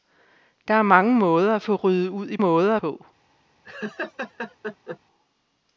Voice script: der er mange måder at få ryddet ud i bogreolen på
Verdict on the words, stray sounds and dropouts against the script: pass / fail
fail